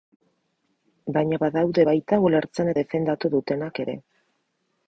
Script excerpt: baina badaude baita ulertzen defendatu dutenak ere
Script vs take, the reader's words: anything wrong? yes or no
no